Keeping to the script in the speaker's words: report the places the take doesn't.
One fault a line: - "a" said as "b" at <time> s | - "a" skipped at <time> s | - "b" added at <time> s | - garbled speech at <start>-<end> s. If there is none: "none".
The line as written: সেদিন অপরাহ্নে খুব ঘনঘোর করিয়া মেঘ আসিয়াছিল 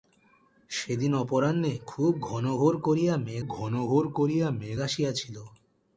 - "ঘনঘোর করিয়া মেঘ" added at 3.5 s